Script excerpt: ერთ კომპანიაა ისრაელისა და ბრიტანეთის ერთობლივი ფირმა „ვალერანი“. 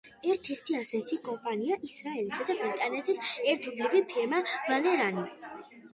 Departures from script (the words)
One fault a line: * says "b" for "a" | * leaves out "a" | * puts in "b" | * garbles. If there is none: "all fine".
* puts in "ერთი ასეთი"